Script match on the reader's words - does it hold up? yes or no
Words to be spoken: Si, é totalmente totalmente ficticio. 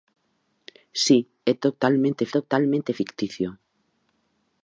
yes